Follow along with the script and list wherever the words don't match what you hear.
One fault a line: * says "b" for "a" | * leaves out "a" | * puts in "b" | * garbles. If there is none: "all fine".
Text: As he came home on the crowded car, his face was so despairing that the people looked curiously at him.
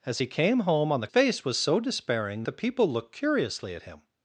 * leaves out "crowded car his"
* leaves out "that"